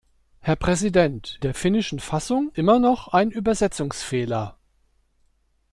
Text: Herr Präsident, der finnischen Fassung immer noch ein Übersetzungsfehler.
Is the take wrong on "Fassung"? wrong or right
right